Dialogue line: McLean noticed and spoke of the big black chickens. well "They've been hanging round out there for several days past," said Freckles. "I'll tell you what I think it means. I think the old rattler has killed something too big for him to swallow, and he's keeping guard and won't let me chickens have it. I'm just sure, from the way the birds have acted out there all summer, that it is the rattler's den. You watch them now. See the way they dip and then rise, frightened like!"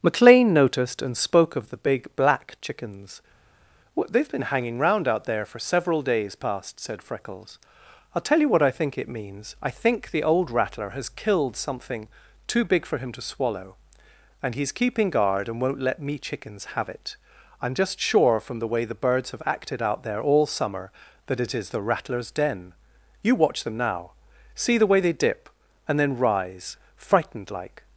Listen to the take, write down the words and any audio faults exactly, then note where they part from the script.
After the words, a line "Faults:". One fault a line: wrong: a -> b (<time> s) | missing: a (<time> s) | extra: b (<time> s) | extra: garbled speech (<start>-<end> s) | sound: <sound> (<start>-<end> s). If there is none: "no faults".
McLean noticed and spoke of the big black chickens. well "They've been hanging round out there for several days past," said Freckles. "I'll tell you what I think it means. I think the old rattler has killed something too big for him to swallow, and he's keeping guard and won't let me chickens have it. I'm just sure, from the way the birds have acted out there all summer, that it is the rattler's den. You watch them now. See the way they dip and then rise, frightened like!"
Faults:
no faults